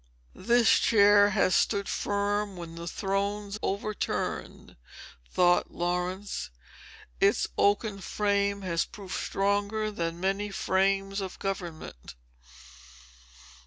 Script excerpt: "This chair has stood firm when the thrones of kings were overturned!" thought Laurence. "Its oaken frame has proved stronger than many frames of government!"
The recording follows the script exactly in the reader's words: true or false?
false